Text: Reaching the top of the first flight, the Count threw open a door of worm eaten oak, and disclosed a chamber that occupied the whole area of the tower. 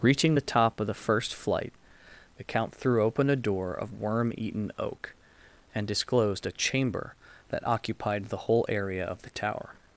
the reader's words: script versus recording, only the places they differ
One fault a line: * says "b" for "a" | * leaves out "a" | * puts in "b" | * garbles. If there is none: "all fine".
all fine